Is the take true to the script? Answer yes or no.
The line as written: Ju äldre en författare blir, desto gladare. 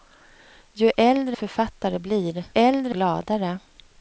no